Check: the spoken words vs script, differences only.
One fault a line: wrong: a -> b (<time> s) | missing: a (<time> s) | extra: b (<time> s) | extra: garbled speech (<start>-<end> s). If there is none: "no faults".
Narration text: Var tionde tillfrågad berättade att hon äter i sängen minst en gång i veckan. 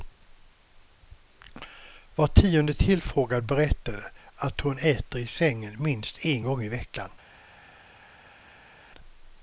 no faults